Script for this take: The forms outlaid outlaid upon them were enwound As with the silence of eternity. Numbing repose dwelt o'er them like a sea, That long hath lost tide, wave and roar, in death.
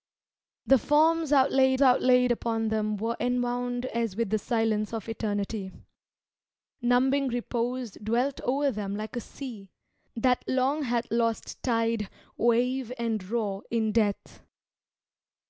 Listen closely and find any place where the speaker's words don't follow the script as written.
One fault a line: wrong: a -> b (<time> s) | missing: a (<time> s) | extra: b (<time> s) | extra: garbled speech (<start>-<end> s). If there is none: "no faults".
no faults